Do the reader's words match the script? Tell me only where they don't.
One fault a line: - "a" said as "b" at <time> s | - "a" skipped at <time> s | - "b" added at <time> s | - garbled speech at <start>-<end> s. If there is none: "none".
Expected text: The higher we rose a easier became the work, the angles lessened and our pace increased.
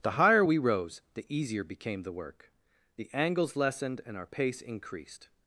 - "a" said as "the" at 1.1 s